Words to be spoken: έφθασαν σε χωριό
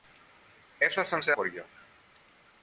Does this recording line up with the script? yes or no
yes